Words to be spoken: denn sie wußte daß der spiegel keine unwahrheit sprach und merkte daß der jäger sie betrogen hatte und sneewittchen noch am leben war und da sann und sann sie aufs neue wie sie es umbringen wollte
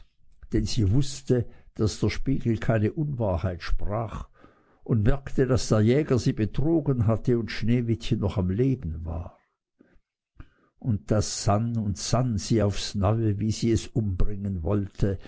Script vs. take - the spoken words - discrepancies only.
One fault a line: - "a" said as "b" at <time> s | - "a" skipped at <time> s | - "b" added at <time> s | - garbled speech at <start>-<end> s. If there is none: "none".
none